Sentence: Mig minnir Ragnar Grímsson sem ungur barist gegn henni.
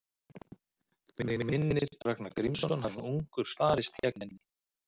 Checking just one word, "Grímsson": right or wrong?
right